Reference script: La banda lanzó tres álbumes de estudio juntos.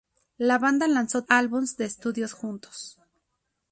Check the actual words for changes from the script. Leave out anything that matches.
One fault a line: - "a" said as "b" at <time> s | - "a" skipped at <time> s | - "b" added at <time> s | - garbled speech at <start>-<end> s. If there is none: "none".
- "tres" skipped at 1.2 s